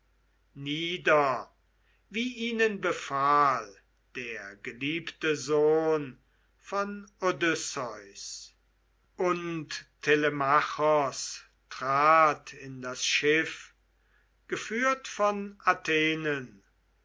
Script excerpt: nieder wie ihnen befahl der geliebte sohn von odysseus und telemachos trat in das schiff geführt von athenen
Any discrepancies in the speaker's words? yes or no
no